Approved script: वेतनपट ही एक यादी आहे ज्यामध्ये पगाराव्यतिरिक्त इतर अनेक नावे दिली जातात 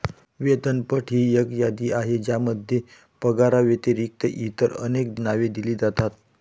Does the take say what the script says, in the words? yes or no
yes